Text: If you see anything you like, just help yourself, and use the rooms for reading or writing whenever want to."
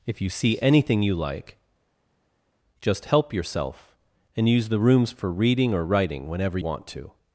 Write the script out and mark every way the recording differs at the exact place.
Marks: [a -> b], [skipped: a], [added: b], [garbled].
If you see anything you like, just help yourself, and use the rooms for reading or writing whenever want to."